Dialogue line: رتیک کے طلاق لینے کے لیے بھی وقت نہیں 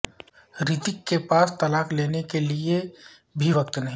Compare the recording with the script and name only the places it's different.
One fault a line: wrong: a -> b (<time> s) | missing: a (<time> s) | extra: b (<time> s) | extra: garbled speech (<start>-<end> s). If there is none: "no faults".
extra: پاس (1.3 s)